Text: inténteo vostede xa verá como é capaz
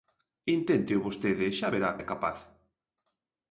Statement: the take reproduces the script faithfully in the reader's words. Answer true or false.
false